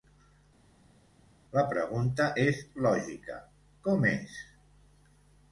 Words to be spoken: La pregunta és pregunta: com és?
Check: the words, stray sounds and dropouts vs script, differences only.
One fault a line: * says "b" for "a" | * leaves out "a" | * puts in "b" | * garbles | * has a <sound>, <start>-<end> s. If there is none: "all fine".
* says "lògica" for "pregunta"